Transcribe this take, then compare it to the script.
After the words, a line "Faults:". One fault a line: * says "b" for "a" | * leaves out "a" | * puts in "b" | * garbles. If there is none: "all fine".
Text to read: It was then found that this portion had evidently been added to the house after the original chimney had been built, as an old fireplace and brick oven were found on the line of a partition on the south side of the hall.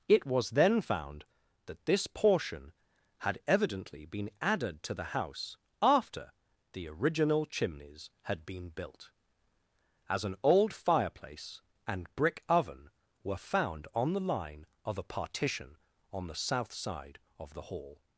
It was then found that this portion had evidently been added to the house after the original chimneys had been built, as an old fireplace and brick oven were found on the line of a partition on the south side of the hall.
Faults:
* says "chimneys" for "chimney"